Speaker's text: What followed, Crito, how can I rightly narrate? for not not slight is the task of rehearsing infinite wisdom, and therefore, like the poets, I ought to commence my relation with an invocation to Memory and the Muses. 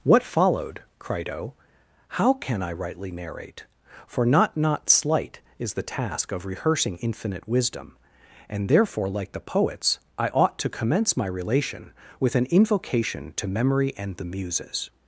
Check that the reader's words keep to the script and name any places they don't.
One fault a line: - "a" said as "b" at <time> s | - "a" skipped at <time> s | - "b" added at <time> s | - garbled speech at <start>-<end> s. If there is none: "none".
none